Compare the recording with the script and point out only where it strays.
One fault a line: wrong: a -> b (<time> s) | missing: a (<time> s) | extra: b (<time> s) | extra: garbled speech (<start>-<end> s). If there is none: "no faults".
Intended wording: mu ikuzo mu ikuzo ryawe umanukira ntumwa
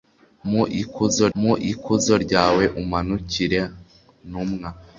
no faults